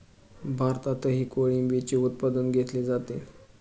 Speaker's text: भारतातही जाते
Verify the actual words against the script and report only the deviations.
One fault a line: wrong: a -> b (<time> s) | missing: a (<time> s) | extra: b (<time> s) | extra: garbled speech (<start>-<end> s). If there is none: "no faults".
extra: कोळंबीचे उत्पादन घेतले (1.2 s)